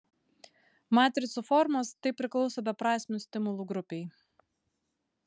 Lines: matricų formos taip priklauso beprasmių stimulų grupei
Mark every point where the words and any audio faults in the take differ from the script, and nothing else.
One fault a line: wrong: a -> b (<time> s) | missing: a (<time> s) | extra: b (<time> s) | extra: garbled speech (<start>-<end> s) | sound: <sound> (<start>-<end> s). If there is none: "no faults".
no faults